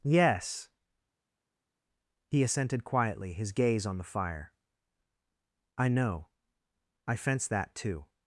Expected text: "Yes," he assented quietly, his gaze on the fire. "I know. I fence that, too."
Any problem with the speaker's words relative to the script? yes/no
no